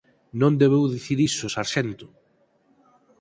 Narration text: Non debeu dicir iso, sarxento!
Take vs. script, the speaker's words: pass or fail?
pass